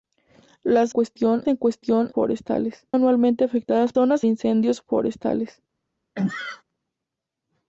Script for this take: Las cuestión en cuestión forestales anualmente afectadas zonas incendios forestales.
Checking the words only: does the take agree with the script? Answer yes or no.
yes